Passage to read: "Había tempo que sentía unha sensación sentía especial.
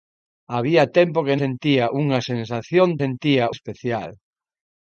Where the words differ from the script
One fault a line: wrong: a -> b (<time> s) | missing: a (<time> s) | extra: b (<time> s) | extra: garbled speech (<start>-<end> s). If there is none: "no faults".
no faults